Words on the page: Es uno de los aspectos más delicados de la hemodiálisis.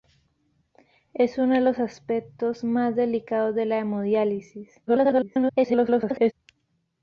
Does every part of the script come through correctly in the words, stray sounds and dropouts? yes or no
no